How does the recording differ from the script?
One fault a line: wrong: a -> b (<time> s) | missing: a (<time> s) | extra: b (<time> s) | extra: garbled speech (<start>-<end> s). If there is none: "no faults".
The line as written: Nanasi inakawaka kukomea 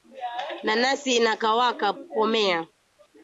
no faults